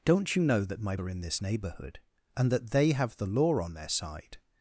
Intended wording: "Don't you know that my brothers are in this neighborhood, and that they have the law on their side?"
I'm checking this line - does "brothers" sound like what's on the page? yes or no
no